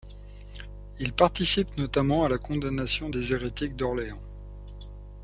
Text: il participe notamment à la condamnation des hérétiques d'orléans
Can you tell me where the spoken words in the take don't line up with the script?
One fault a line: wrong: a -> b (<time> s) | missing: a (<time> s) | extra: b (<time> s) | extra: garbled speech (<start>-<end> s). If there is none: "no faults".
no faults